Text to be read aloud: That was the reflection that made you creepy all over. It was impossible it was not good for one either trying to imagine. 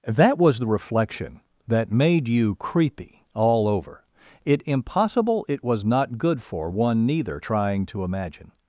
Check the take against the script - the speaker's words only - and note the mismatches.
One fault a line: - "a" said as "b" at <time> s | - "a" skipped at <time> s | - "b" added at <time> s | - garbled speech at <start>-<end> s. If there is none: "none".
- "was" skipped at 4.6 s
- "either" said as "neither" at 7.1 s